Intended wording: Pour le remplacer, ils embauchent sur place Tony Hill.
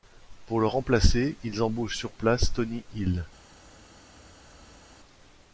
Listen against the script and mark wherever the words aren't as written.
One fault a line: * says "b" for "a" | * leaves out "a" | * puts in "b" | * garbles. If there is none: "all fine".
all fine